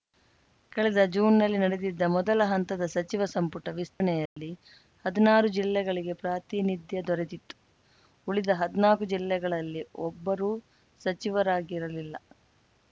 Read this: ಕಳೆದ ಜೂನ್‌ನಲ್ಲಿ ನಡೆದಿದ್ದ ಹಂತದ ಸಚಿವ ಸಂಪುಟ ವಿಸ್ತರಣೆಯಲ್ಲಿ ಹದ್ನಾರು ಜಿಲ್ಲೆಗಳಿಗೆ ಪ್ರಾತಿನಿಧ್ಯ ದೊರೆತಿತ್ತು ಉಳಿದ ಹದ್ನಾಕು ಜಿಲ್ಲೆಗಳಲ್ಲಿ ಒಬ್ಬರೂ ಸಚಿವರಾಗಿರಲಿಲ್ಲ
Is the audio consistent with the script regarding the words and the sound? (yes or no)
no